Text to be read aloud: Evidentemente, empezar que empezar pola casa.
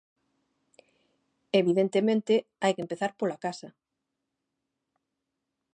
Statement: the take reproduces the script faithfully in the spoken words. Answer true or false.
false